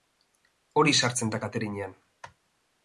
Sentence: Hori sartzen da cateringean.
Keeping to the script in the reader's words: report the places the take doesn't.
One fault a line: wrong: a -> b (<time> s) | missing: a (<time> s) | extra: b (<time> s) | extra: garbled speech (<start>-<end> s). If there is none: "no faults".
no faults